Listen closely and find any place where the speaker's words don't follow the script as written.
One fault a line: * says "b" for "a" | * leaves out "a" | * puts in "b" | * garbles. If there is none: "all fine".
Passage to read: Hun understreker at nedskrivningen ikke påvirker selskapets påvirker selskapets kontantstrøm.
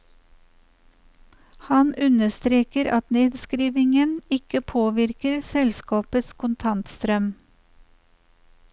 * says "Han" for "Hun"
* leaves out "påvirker selskapets"